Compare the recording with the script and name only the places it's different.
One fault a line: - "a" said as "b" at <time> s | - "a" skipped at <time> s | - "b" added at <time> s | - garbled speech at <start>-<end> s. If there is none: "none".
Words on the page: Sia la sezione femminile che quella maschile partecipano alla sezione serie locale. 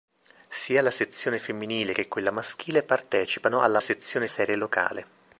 none